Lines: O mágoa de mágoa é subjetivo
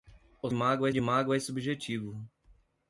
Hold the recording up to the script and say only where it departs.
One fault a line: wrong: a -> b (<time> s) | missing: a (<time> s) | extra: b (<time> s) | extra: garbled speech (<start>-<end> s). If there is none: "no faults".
no faults